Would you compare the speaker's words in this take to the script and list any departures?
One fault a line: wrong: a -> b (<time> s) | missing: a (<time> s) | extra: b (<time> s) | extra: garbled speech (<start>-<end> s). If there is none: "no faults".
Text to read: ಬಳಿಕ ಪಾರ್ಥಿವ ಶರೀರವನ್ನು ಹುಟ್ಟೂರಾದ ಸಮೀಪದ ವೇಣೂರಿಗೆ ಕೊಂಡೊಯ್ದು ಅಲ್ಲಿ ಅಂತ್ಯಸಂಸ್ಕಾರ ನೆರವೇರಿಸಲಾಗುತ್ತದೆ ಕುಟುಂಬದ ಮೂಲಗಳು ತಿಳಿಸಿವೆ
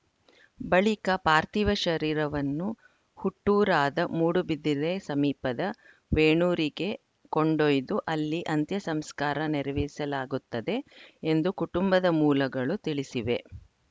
extra: ಮೂಡುಬಿದಿರೆ (4.1 s)
extra: ಎಂದು (11.3 s)